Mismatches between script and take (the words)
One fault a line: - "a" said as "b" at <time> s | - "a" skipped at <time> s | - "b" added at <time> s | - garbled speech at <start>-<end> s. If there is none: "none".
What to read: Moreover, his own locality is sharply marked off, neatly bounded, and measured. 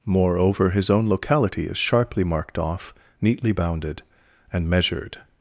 none